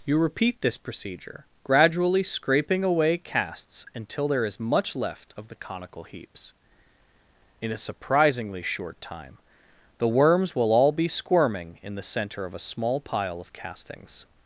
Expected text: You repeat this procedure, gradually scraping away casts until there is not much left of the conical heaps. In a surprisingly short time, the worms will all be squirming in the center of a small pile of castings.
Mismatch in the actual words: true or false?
true